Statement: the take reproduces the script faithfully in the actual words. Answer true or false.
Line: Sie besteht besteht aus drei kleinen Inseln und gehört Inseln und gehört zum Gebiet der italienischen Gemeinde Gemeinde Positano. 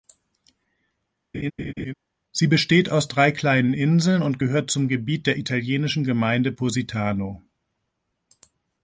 false